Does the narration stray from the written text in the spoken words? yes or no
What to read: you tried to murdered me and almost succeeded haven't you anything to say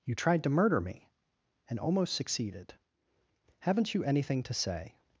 yes